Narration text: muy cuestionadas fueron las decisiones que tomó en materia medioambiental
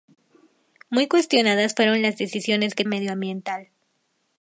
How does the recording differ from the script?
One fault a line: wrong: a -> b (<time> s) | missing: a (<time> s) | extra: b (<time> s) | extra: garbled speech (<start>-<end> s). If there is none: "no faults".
missing: tomó en materia (2.9 s)